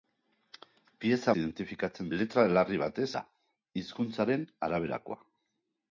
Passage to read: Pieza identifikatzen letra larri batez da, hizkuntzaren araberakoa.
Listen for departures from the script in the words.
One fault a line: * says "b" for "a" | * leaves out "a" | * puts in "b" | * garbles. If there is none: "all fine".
all fine